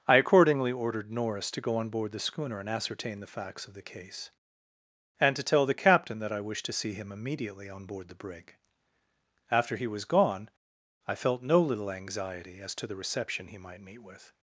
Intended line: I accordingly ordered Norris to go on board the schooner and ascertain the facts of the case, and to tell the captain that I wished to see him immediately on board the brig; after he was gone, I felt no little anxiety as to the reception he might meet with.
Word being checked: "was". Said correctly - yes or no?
yes